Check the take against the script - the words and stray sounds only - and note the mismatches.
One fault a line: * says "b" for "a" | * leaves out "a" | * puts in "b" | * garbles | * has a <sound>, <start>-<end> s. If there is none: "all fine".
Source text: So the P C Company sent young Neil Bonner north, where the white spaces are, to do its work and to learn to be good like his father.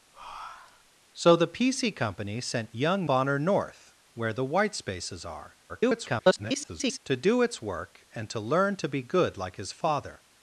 * has a breath, 0.1-0.9 s
* leaves out "Neil"
* garbles